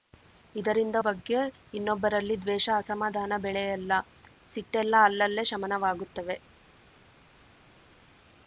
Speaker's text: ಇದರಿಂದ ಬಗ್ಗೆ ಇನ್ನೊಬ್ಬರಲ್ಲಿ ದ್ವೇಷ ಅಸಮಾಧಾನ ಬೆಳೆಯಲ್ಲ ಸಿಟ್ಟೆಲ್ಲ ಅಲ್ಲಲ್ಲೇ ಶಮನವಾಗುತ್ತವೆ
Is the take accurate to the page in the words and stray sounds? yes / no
yes